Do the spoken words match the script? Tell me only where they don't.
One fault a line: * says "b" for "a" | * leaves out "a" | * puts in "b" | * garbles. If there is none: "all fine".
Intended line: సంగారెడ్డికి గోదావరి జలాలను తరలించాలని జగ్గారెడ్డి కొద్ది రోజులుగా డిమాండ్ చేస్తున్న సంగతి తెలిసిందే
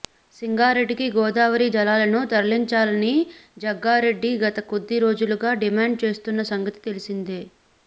* puts in "గత"